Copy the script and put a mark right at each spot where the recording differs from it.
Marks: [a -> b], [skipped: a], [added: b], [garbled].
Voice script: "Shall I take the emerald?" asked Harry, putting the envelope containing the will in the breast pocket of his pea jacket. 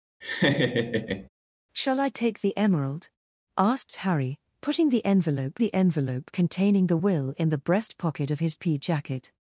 "Shall I take the emerald?" asked Harry, putting the envelope [added: the envelope] containing the will in the breast pocket of his pea jacket.